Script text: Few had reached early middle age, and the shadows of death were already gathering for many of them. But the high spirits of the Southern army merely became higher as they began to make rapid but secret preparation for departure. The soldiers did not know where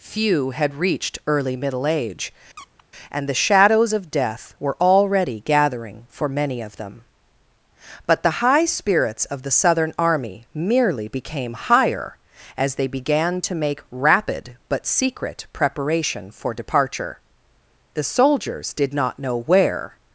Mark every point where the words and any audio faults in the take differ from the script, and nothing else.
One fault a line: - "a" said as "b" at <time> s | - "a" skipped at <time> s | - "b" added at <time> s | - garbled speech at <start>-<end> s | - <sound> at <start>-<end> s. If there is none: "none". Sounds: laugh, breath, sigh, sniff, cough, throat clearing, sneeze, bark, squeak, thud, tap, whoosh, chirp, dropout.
- squeak at 2.6-2.8 s